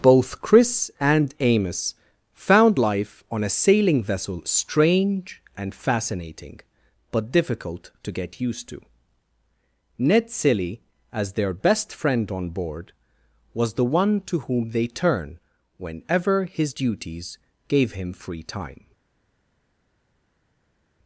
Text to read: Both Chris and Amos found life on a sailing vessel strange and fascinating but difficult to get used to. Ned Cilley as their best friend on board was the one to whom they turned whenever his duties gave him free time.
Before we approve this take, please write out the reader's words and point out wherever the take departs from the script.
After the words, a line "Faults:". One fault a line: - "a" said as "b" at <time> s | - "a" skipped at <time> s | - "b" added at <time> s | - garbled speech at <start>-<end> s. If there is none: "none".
Both Chris and Amos found life on a sailing vessel strange and fascinating but difficult to get used to. Ned Cilley as their best friend on board was the one to whom they turn whenever his duties gave him free time.
Faults:
- "turned" said as "turn" at 14.9 s